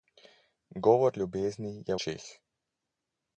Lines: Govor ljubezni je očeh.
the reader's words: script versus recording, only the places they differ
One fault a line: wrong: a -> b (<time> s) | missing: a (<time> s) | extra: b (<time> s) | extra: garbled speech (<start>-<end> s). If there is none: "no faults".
no faults